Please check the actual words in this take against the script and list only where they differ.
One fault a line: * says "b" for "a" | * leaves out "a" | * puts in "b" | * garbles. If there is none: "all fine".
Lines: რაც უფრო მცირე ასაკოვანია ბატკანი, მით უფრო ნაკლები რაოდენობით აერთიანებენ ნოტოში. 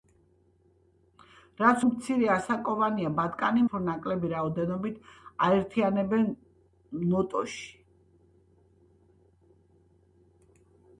* leaves out "უფრო"
* leaves out "მით"